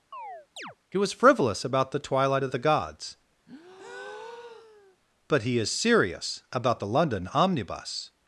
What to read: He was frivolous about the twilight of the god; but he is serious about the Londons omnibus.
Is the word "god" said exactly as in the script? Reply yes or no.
no